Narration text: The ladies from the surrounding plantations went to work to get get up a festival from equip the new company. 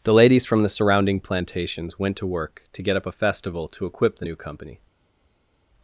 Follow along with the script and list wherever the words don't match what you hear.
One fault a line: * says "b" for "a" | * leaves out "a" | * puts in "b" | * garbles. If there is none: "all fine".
* leaves out "get"
* says "to" for "from"